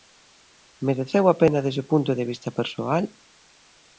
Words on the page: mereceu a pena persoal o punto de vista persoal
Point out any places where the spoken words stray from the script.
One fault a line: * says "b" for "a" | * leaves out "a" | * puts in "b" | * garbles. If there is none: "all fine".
* says "desde" for "persoal"